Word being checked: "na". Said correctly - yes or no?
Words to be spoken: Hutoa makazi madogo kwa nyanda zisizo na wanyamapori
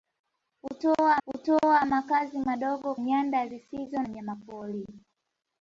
no